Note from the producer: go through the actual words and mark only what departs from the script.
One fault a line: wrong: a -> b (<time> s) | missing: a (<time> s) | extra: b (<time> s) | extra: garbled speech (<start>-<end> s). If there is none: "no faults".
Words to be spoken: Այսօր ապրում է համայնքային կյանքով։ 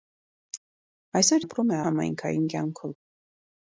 no faults